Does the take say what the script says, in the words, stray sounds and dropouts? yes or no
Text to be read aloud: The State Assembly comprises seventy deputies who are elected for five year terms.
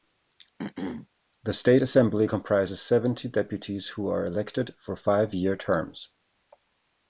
no